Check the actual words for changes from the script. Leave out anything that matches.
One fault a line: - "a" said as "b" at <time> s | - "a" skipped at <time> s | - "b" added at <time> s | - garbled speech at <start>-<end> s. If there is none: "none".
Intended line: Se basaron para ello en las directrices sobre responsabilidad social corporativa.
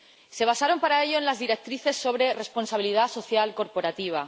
none